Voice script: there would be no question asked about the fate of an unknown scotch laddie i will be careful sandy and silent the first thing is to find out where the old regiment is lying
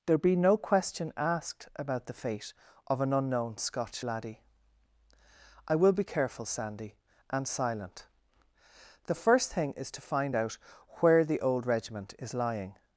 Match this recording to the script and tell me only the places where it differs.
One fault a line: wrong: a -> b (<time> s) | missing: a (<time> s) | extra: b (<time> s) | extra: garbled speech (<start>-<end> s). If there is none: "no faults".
missing: would (0.2 s)